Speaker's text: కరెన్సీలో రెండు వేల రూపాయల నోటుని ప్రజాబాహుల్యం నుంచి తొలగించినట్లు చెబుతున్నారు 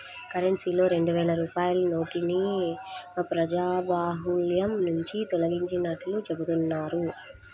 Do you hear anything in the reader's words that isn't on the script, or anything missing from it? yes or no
no